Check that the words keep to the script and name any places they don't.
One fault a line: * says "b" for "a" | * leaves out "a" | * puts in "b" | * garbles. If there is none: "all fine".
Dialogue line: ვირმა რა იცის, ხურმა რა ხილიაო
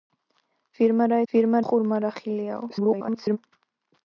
* says "ვირმა" for "იცის"
* garbles